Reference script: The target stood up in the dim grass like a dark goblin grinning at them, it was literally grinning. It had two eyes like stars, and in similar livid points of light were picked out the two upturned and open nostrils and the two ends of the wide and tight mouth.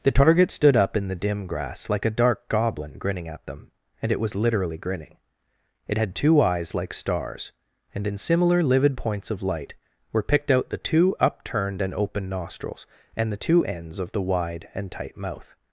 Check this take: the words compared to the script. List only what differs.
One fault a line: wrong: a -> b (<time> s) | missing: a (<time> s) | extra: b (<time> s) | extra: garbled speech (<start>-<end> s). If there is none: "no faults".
extra: and (4.0 s)